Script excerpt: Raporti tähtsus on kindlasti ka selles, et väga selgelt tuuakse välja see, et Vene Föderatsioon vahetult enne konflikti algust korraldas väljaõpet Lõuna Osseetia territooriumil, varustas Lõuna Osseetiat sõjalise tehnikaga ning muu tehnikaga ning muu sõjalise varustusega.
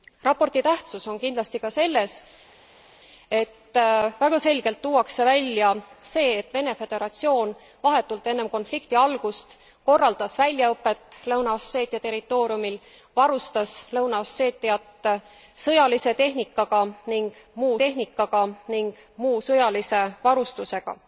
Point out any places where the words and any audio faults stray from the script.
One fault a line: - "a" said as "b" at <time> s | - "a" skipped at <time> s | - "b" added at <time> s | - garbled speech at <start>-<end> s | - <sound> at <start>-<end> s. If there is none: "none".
none